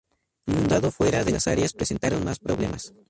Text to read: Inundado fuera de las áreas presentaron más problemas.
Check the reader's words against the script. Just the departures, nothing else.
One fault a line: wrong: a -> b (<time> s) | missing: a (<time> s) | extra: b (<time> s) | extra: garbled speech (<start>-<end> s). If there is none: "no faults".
no faults